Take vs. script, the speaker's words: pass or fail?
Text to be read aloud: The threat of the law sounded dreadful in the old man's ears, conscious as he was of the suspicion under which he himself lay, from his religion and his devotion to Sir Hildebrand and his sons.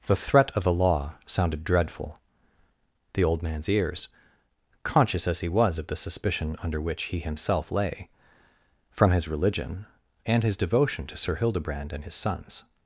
fail